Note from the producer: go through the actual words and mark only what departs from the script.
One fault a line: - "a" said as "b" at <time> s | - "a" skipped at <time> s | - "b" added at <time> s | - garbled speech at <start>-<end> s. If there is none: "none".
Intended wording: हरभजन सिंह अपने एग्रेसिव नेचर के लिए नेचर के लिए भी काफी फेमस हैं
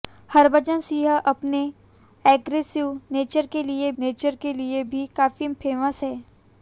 none